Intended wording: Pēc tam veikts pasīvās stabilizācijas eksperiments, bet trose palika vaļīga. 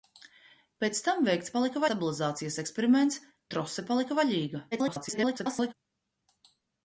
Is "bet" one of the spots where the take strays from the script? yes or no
yes